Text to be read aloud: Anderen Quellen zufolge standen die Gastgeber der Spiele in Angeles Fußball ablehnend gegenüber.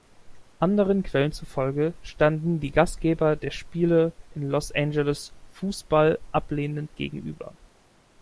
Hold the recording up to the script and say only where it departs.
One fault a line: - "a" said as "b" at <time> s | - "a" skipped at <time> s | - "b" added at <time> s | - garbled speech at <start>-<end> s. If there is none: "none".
- "Los" added at 4.4 s